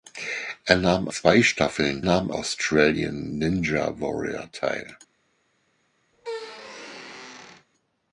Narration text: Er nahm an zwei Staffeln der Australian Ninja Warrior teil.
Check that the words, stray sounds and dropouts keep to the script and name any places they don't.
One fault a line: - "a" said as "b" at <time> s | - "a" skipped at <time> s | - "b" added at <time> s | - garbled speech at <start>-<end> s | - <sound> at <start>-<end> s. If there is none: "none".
- "an" skipped at 1.1 s
- "der" said as "nahm" at 2.0 s
- squeak at 6.1-7.7 s